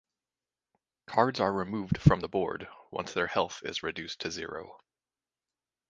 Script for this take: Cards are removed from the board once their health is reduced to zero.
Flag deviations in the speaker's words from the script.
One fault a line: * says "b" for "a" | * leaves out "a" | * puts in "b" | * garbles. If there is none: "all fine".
all fine